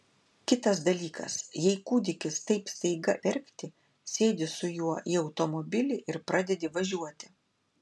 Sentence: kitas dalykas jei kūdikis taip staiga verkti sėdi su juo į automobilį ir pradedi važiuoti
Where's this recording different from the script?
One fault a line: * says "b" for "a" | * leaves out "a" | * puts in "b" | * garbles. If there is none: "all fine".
all fine